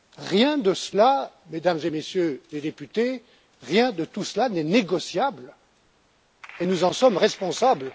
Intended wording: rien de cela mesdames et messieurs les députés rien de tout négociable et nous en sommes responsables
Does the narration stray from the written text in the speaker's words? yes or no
yes